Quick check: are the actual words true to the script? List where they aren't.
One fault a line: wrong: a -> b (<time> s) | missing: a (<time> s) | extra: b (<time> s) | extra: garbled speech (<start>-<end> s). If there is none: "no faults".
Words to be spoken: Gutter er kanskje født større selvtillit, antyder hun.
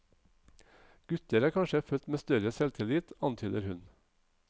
extra: med (2.1 s)